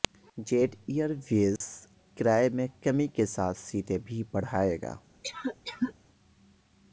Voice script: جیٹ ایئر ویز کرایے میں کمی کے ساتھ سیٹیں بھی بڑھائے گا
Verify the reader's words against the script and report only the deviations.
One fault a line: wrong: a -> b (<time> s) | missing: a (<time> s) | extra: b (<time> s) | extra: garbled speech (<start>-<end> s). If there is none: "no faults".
no faults